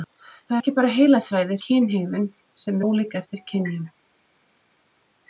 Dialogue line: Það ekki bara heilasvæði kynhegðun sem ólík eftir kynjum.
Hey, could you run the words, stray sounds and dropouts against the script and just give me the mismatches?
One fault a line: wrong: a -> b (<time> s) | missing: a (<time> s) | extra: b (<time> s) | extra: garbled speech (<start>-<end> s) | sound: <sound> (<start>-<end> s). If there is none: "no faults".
no faults